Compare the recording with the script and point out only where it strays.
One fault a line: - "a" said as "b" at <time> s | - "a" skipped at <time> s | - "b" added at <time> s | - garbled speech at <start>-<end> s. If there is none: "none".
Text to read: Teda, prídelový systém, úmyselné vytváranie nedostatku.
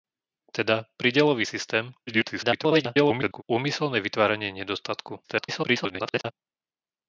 - garbled speech at 2.1-3.4 s
- garbled speech at 5.2-6.3 s